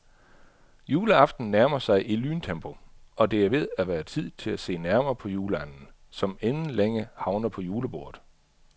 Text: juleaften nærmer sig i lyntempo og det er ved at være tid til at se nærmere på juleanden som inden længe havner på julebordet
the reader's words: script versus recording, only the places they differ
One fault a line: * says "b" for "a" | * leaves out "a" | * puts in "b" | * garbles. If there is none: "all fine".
all fine